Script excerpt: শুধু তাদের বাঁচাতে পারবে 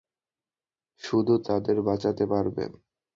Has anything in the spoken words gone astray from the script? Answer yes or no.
no